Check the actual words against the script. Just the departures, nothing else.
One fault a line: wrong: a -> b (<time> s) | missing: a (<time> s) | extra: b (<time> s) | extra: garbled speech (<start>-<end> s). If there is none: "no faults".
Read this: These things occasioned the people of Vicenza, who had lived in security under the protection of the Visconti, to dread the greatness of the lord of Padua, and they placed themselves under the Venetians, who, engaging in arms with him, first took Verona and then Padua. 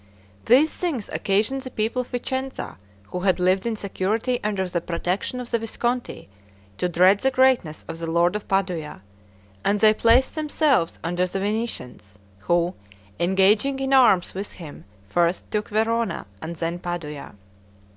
no faults